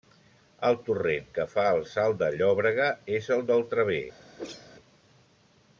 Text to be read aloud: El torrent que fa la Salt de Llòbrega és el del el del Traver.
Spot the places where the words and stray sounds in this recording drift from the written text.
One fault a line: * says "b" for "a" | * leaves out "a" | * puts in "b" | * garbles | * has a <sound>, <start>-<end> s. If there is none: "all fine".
* says "el" for "la"
* leaves out "el del"
* has a whoosh, 4.4-4.7 s